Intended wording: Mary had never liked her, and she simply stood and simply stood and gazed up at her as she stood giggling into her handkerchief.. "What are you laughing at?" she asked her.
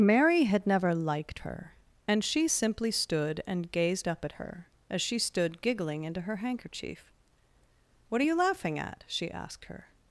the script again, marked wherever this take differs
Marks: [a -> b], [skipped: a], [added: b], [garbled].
Mary had never liked her, and she simply stood and [skipped: simply stood and] gazed up at her as she stood giggling into her handkerchief.. "What are you laughing at?" she asked her.